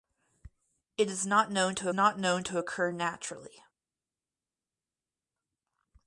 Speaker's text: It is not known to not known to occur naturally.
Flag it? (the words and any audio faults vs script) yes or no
no